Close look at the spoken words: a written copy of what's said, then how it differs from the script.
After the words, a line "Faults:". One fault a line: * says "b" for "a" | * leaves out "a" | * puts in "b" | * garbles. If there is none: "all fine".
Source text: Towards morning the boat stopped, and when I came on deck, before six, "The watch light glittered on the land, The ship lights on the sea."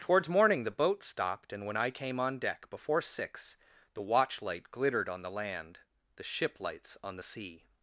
Towards morning the boat stopped, and when I came on deck, before six, "The watch light glittered on the land, The ship lights on the sea."
Faults:
all fine